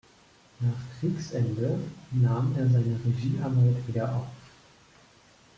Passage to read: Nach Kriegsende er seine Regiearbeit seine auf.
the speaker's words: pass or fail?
fail